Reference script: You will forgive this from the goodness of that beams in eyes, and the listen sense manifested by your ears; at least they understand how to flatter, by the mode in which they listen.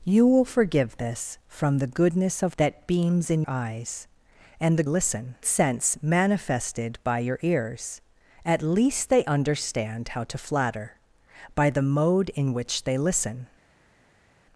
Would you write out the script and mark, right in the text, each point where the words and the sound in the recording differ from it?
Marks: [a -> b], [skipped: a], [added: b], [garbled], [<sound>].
You will forgive this from the goodness of that beams in eyes, and the listen sense manifested by your ears; at least they understand how to flatter, by the mode in which they listen.